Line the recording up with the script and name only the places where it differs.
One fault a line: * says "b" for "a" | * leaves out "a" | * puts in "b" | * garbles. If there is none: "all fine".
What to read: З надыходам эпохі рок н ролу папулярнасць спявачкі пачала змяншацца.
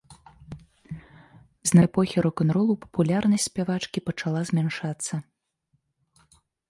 * leaves out "надыходам"